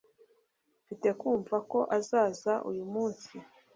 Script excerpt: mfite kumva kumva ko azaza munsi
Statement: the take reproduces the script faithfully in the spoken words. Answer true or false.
false